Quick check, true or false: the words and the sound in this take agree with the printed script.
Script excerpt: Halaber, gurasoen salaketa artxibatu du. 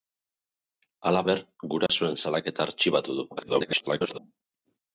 false